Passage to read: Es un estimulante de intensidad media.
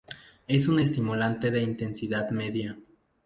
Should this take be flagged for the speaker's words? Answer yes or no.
no